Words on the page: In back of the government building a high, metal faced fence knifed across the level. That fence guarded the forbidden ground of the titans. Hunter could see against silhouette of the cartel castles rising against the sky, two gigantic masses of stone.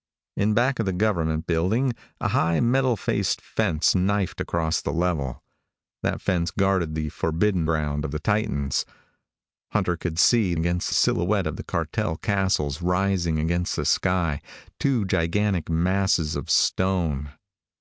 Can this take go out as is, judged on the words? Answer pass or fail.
pass